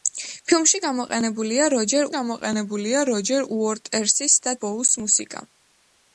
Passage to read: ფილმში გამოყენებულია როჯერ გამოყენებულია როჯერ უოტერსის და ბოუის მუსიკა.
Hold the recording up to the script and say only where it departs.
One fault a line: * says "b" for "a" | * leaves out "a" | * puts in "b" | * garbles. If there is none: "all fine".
all fine